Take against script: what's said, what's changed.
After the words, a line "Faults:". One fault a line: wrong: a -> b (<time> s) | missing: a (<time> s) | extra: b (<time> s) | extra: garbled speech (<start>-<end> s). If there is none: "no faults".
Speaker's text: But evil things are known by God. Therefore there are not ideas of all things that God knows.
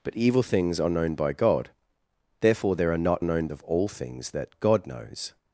But evil things are known by God. Therefore there are not known of all things that God knows.
Faults:
wrong: ideas -> known (3.2 s)